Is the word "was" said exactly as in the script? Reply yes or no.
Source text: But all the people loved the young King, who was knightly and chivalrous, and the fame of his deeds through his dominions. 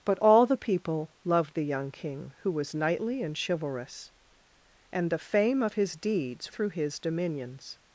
yes